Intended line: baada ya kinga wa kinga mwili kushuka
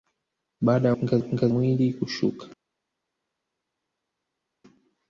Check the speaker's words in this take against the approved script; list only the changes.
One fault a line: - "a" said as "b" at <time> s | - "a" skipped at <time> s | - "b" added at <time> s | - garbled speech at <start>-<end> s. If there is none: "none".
none